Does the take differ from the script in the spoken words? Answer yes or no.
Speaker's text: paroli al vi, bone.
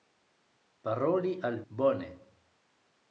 yes